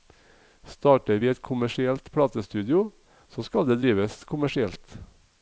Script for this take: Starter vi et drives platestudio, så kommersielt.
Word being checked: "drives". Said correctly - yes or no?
no